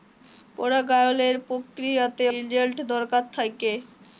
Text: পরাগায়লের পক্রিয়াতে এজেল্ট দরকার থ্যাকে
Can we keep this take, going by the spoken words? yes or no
yes